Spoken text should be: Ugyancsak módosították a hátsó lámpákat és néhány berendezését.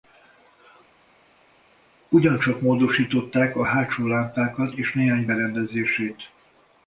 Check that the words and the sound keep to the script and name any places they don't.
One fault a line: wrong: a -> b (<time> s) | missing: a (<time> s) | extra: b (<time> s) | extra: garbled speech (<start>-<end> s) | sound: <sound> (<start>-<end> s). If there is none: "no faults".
no faults